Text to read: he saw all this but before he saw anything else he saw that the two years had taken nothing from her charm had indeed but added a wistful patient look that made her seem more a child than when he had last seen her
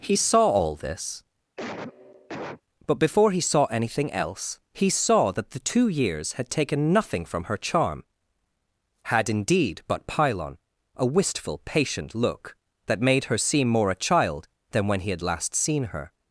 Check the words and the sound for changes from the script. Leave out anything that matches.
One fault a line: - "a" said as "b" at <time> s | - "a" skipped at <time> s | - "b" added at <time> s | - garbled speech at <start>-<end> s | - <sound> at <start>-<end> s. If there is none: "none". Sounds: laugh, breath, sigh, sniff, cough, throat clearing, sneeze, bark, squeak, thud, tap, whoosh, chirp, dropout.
- cough at 1.6-2.6 s
- "added" said as "pylon" at 10.0 s